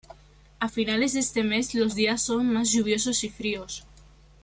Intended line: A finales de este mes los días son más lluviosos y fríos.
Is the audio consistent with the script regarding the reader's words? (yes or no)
yes